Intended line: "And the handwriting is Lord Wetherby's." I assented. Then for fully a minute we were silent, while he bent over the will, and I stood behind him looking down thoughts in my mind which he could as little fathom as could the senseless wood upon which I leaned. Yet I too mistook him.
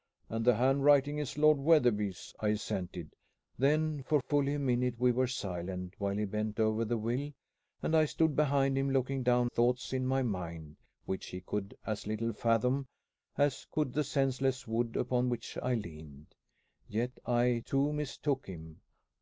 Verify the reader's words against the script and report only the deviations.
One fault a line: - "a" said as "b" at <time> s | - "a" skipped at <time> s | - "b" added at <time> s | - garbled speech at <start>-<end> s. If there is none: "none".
none